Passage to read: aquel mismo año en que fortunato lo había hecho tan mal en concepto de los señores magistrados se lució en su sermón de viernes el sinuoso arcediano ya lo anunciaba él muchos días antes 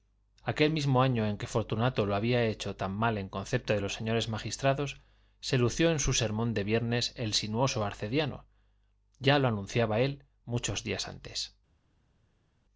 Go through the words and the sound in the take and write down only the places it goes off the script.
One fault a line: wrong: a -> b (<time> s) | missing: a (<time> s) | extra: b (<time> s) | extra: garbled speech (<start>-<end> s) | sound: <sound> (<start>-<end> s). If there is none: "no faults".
no faults